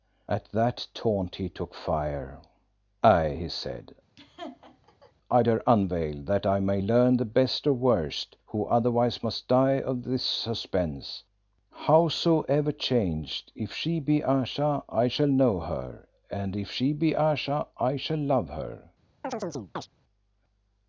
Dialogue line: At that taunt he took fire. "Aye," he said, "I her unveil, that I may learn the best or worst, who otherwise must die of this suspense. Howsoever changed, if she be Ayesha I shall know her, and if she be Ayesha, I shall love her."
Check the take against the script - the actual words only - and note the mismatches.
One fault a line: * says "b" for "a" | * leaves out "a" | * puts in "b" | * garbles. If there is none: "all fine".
all fine